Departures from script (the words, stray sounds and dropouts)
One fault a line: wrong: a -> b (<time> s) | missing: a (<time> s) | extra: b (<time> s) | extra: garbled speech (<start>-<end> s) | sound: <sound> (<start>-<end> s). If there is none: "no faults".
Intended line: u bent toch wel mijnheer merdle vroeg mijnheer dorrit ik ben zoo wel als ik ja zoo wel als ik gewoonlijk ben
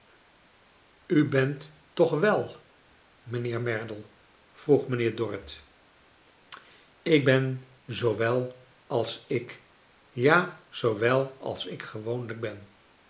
no faults